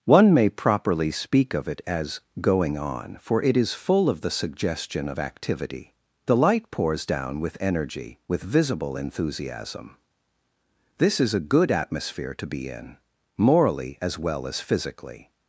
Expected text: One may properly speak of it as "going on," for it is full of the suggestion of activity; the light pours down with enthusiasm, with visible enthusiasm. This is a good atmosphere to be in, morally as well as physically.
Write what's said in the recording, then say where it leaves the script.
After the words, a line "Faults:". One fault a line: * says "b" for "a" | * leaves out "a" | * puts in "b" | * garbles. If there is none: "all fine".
One may properly speak of it as "going on," for it is full of the suggestion of activity; the light pours down with energy, with visible enthusiasm. This is a good atmosphere to be in, morally as well as physically.
Faults:
* says "energy" for "enthusiasm"